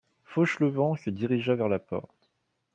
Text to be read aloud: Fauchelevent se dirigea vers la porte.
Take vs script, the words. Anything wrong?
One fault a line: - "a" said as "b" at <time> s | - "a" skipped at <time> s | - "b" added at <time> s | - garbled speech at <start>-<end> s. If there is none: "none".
none